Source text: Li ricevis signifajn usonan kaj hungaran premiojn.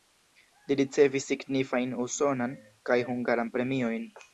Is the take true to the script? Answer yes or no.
yes